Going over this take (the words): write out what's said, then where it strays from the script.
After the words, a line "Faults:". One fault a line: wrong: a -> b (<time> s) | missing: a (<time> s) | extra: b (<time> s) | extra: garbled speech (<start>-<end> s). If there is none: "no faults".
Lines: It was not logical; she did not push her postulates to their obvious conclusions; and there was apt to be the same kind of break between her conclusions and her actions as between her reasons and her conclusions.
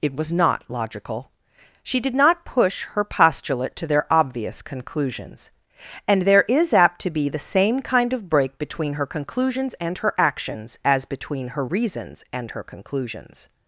It was not logical; she did not push her postulate to their obvious conclusions; and there is apt to be the same kind of break between her conclusions and her actions as between her reasons and her conclusions.
Faults:
wrong: postulates -> postulate (3.0 s)
wrong: was -> is (6.5 s)